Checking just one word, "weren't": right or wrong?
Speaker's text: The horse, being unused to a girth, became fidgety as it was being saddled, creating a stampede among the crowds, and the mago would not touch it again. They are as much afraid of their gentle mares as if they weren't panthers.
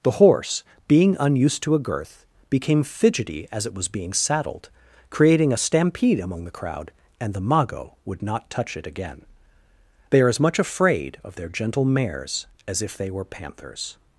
wrong